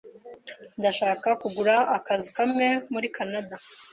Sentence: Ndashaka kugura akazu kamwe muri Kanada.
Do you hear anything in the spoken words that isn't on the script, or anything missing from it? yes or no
no